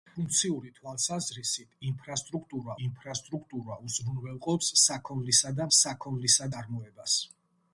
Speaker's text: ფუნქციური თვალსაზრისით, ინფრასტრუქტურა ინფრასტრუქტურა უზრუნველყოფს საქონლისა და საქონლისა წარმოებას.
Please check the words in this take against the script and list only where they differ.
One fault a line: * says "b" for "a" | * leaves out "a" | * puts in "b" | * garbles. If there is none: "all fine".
all fine